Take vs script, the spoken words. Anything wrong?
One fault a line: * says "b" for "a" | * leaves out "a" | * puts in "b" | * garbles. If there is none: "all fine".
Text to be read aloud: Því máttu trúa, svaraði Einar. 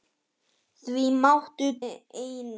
* leaves out "trúa svaraði"